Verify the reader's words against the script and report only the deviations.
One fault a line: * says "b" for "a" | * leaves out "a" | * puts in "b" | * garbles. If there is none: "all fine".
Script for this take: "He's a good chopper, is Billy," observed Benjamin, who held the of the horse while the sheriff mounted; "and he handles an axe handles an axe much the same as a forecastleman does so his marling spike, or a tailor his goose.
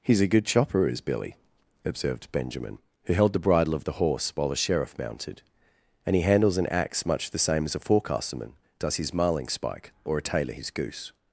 * puts in "bridle"
* leaves out "handles an axe"
* leaves out "so"